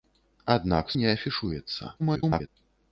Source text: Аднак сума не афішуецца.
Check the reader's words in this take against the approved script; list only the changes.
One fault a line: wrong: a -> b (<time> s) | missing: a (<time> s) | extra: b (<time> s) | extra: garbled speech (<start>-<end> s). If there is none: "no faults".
missing: сума (0.9 s)
extra: garbled speech (2.0-2.5 s)